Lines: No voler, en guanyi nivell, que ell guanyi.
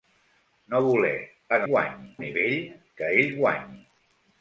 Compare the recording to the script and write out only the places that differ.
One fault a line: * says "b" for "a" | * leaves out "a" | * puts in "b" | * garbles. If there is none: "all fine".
all fine